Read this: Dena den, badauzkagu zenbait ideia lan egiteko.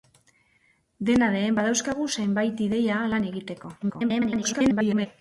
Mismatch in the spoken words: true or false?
true